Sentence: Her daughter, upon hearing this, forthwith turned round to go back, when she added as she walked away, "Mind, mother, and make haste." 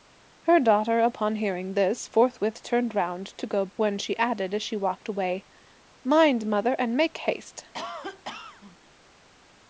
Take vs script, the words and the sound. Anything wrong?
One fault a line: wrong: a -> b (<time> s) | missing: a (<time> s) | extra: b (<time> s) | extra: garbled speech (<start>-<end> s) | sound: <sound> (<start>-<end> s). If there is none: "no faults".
missing: back (3.7 s)
sound: cough (7.7-8.8 s)